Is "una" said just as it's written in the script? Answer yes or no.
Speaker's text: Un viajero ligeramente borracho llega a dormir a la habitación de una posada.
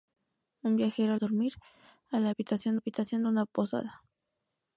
yes